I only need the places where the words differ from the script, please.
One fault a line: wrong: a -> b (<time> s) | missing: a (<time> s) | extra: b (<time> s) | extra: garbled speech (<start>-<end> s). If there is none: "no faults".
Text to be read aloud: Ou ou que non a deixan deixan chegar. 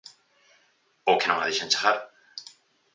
missing: ou (1.2 s)
missing: deixan (1.7 s)